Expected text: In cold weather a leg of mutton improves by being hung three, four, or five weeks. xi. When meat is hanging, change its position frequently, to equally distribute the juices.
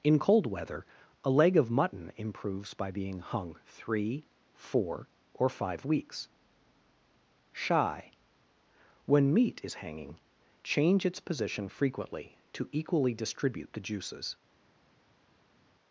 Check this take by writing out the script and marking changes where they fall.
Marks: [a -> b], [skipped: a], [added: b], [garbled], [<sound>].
In cold weather a leg of mutton improves by being hung three, four, or five weeks. [xi. -> shy] When meat is hanging, change its position frequently, to equally distribute the juices.